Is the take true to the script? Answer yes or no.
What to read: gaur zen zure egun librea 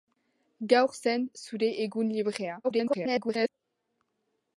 no